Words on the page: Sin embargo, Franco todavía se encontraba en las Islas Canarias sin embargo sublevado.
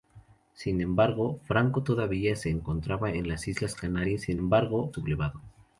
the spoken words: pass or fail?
pass